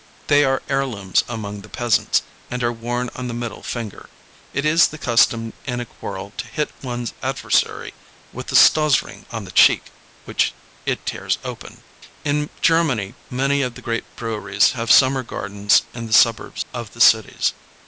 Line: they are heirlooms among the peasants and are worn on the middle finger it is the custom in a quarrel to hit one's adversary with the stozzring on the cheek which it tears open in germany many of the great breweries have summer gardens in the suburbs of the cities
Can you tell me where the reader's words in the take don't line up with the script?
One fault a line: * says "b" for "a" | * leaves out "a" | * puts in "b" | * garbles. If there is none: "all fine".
all fine